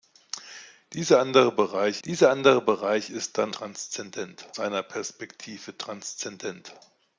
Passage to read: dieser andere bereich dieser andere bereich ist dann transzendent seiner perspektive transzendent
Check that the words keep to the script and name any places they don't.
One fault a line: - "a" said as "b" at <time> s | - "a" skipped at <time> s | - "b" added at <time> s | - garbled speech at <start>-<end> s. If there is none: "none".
none